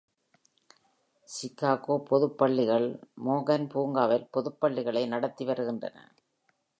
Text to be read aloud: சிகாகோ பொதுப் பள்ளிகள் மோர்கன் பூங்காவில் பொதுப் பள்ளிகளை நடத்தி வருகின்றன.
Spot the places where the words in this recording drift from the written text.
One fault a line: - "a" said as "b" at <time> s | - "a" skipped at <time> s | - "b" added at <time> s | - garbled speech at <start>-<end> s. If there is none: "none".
none